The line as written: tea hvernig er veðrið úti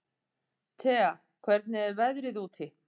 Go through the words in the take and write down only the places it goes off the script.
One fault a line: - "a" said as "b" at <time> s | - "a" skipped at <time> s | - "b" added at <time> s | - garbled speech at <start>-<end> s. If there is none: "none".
none